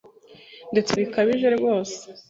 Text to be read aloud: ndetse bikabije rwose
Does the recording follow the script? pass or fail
pass